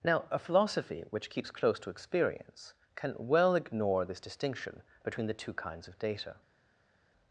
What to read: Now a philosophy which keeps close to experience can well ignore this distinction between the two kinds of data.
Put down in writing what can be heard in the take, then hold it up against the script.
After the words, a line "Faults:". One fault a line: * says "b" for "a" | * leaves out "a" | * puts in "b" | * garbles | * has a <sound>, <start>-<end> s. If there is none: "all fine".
Now a philosophy which keeps close to experience can well ignore this distinction between the two kinds of data.
Faults:
all fine